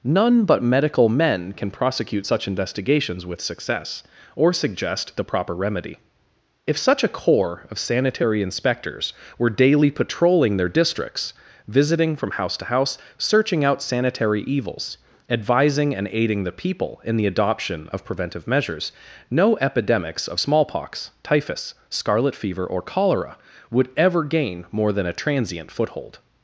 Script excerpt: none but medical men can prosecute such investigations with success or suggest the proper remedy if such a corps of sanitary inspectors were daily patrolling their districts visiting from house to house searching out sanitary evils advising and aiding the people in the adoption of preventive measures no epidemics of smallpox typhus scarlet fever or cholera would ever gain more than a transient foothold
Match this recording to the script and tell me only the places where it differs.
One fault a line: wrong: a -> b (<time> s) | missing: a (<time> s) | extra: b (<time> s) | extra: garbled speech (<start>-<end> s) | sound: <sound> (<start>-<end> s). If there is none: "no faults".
no faults